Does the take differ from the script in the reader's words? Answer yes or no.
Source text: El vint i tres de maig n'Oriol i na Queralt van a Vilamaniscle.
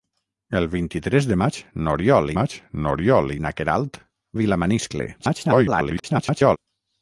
yes